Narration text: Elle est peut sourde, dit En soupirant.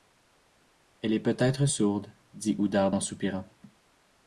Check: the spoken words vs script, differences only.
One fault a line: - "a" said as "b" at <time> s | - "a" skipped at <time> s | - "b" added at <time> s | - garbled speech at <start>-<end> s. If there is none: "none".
- "être" added at 1.4 s
- "Oudarde" added at 2.6 s